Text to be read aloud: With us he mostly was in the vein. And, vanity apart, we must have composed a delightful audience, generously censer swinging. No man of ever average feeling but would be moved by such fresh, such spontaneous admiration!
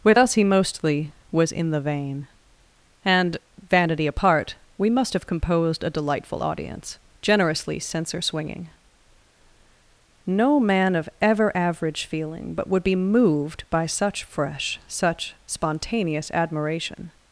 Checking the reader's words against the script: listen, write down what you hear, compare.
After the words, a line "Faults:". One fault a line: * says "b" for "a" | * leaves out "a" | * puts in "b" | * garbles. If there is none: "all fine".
With us he mostly was in the vein. And, vanity apart, we must have composed a delightful audience, generously censer swinging. No man of ever average feeling but would be moved by such fresh, such spontaneous admiration!
Faults:
all fine